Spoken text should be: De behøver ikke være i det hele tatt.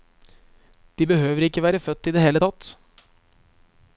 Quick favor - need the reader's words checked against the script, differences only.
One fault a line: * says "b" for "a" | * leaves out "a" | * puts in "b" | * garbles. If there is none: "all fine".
* puts in "født"